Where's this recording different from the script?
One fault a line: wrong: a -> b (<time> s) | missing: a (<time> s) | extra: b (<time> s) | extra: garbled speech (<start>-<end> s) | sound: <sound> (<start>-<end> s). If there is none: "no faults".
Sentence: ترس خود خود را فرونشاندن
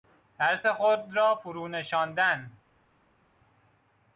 missing: خود (1.1 s)